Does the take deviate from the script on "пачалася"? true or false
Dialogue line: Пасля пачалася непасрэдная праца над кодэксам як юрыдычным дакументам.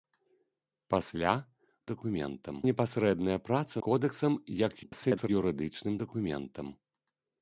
true